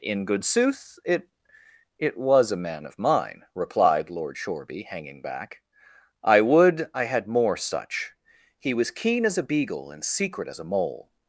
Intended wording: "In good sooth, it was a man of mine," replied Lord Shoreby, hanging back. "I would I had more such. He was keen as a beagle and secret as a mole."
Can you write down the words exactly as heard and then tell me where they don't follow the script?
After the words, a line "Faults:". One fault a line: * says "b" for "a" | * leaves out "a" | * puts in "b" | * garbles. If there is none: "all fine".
"In good sooth, it it was a man of mine," replied Lord Shoreby, hanging back. "I would I had more such. He was keen as a beagle and secret as a mole."
Faults:
* puts in "it"